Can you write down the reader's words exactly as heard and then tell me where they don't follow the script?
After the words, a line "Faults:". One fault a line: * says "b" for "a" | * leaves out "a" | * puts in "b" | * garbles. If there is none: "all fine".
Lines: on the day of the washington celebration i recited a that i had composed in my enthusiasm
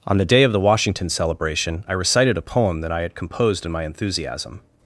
on the day of the washington celebration i recited a poem that i had composed in my enthusiasm
Faults:
* puts in "poem"